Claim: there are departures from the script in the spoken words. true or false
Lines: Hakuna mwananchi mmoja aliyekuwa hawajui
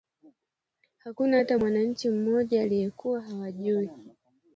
true